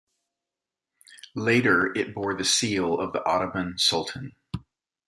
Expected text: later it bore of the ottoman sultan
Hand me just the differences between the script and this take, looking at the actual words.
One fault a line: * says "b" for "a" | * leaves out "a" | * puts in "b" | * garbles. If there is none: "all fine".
* puts in "the seal"